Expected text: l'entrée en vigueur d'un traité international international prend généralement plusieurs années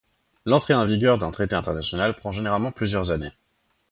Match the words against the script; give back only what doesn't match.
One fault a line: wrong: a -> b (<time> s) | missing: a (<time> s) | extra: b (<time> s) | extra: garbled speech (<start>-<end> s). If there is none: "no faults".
missing: international (2.1 s)